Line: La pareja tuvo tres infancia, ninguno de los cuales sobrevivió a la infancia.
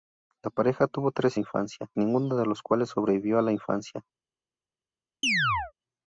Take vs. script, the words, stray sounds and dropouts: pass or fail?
fail